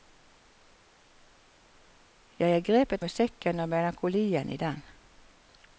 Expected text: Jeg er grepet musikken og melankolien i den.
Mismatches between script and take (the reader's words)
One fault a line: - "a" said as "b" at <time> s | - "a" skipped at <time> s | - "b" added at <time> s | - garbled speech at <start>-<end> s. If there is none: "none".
none